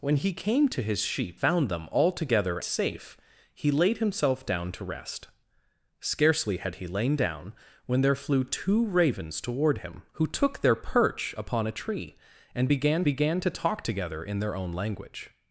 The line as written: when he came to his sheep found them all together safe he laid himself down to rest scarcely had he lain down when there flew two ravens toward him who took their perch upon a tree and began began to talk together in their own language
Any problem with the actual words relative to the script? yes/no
no